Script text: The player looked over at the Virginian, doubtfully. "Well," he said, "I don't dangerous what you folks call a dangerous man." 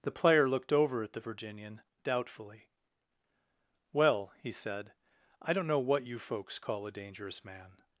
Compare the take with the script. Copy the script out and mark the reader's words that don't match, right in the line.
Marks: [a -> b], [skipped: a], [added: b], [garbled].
The player looked over at the Virginian, doubtfully. "Well," he said, "I don't [dangerous -> know] what you folks call a dangerous man."